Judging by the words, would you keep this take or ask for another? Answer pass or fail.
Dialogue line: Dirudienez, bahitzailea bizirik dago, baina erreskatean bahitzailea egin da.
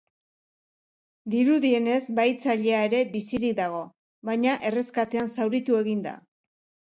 fail